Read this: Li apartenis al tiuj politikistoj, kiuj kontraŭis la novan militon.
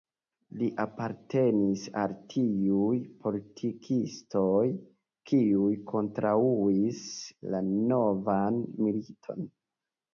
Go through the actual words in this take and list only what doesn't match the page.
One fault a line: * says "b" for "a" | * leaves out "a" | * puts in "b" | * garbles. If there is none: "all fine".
all fine